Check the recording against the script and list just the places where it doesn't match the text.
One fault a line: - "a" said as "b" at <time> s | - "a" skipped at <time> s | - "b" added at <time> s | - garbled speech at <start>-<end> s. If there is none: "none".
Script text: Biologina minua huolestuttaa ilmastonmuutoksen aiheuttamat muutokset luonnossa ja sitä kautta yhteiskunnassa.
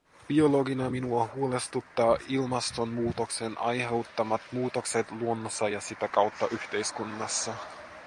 none